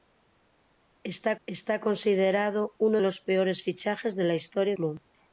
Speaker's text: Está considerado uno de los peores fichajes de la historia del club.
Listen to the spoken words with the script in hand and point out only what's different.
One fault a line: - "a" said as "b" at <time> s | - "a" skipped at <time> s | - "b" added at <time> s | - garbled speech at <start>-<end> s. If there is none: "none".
- "está" added at 1.5 s
- "de" skipped at 3.0 s
- "del" skipped at 4.7 s